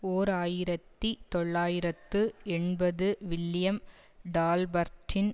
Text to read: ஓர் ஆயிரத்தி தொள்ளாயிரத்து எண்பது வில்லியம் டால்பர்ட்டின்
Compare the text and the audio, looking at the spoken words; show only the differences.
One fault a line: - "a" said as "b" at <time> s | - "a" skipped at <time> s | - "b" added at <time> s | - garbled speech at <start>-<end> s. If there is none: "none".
none